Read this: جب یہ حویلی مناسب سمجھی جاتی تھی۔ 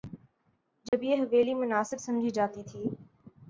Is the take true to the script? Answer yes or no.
yes